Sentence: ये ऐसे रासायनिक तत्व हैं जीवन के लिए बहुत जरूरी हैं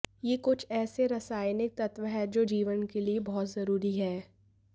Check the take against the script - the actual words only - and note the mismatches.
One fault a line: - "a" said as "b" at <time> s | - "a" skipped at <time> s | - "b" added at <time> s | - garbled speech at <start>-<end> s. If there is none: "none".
- "कुछ" added at 0.4 s
- "जो" added at 2.3 s